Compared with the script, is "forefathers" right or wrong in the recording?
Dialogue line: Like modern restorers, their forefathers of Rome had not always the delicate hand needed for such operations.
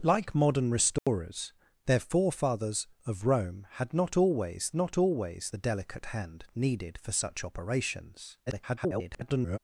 right